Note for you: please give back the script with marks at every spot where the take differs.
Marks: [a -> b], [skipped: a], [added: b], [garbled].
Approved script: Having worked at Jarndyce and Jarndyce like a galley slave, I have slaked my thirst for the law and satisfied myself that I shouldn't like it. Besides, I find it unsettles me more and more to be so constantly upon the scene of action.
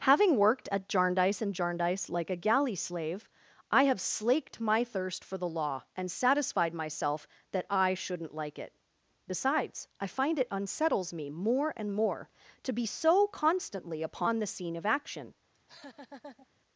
Having worked at Jarndyce and Jarndyce like a galley slave, I have slaked my thirst for the law and satisfied myself that I shouldn't like it. Besides, I find it unsettles me more and more to be so constantly upon the scene of action.